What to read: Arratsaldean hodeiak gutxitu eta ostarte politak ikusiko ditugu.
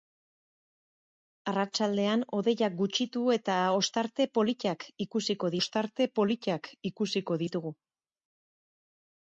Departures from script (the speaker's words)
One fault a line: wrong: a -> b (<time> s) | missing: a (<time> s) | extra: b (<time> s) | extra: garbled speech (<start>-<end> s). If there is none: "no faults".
extra: ostarte politak ikusiko (5.6 s)